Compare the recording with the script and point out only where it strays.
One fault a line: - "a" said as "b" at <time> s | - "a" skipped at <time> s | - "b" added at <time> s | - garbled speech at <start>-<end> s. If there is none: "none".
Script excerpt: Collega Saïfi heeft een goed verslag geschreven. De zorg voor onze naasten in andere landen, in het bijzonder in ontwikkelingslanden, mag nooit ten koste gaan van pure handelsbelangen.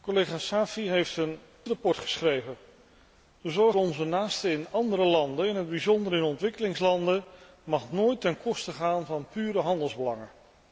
- "goed" skipped at 1.4 s
- "voor" skipped at 3.8 s